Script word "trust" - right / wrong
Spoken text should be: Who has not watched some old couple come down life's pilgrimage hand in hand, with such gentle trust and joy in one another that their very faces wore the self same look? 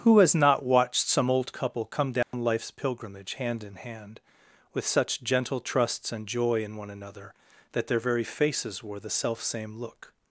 wrong